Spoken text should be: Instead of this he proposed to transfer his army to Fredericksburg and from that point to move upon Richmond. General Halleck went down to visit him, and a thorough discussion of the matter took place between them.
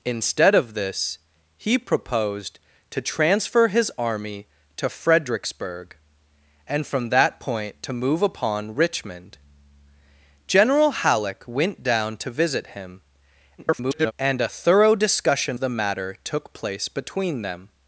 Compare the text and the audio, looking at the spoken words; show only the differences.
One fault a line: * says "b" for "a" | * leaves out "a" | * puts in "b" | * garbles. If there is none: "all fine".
* garbles
* leaves out "of"